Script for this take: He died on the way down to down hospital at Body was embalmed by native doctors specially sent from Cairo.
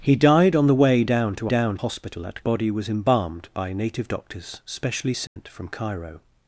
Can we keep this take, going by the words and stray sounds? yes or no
no